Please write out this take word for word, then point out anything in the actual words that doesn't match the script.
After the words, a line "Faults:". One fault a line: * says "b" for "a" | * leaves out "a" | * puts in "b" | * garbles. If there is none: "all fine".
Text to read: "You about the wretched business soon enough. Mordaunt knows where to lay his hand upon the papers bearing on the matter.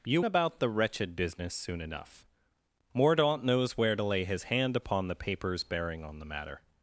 "You about the wretched business soon enough. Mordaunt knows where to lay his hand upon the papers bearing on the matter.
Faults:
all fine